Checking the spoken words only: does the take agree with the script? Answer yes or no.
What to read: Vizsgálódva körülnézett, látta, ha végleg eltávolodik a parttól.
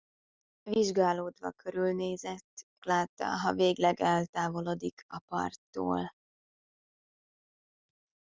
yes